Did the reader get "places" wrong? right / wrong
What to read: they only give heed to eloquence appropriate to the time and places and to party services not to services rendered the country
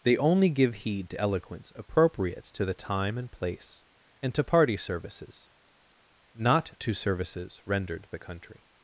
wrong